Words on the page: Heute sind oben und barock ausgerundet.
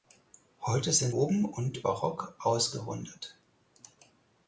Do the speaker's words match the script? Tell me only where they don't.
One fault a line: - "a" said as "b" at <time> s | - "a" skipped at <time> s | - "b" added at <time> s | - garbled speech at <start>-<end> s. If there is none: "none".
none